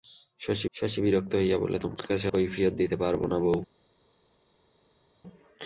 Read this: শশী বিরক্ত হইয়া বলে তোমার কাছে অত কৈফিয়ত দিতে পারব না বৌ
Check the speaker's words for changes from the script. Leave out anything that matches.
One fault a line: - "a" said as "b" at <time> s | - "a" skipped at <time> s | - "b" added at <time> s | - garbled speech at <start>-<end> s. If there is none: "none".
- "শশী" added at 0.7 s
- "অত" skipped at 2.3 s